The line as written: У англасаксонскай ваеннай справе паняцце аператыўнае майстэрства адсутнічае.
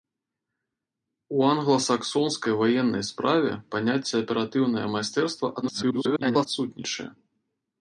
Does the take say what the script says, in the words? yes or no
no